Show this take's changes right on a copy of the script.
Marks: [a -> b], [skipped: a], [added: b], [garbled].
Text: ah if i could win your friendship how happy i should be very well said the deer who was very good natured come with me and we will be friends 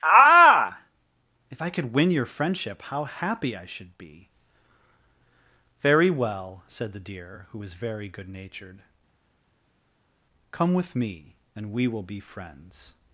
ah if i could win your friendship how happy i should be very well said the deer who was very good natured come with me and we will be friends